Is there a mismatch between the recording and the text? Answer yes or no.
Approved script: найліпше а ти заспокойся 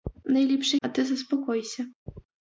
no